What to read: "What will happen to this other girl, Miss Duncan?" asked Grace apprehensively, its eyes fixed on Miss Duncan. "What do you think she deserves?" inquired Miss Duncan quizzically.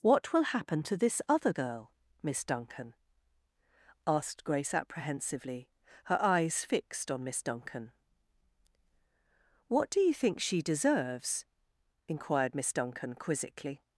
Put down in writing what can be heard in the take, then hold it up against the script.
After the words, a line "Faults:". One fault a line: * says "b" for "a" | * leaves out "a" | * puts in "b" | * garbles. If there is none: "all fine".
"What will happen to this other girl, Miss Duncan?" asked Grace apprehensively, her eyes fixed on Miss Duncan. "What do you think she deserves?" inquired Miss Duncan quizzically.
Faults:
* says "her" for "its"